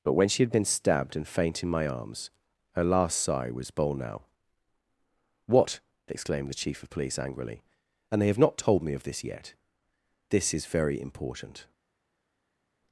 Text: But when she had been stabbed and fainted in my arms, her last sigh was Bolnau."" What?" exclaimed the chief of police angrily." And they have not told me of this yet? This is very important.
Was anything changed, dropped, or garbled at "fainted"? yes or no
yes